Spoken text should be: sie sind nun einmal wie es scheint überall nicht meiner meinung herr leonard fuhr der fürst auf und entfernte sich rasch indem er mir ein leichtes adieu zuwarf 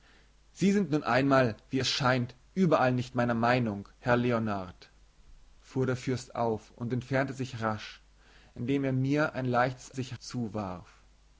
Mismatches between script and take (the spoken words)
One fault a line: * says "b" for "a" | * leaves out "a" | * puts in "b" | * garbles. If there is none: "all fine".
* says "sich" for "adieu"